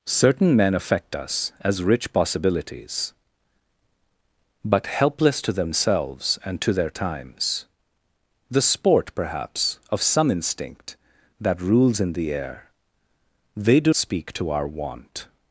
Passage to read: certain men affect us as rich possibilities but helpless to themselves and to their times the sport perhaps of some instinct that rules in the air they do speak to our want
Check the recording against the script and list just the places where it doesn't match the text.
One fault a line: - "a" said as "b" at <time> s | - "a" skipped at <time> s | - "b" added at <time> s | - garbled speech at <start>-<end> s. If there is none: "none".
none